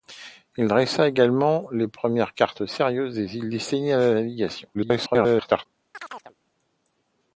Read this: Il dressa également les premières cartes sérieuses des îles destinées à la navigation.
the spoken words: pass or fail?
fail